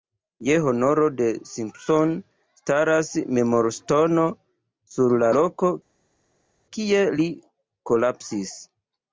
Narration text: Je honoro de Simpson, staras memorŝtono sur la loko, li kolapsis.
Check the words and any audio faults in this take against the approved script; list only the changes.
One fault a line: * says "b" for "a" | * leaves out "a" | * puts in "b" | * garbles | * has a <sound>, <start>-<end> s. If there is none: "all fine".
* puts in "kie"